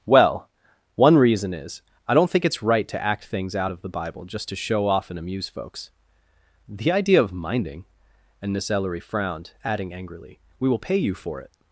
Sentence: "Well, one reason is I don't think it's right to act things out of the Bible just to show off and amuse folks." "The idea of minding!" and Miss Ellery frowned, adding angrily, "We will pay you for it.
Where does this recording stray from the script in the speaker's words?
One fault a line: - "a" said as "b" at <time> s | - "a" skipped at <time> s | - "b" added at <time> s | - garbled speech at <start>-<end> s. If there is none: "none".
none